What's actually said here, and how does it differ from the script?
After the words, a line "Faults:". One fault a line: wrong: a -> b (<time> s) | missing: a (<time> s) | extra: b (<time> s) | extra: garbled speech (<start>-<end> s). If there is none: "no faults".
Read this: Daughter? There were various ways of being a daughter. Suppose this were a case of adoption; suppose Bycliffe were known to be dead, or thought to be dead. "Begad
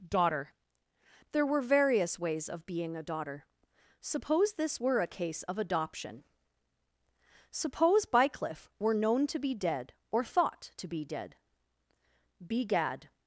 Daughter? There were various ways of being a daughter. Suppose this were a case of adoption; suppose Bycliffe were known to be dead, or thought to be dead. "Begad
Faults:
no faults